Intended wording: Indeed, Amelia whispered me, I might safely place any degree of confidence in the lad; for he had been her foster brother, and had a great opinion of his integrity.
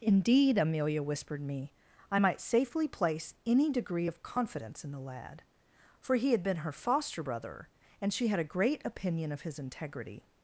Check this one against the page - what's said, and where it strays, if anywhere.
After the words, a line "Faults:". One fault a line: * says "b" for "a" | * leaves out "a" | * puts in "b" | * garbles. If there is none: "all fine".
Indeed, Amelia whispered me, I might safely place any degree of confidence in the lad; for he had been her foster brother, and she had a great opinion of his integrity.
Faults:
* puts in "she"